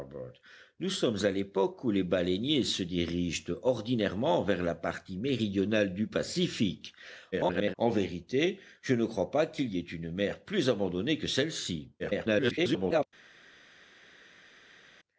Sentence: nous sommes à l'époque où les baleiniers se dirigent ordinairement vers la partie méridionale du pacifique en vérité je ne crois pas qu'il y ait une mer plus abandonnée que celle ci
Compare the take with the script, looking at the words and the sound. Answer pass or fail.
fail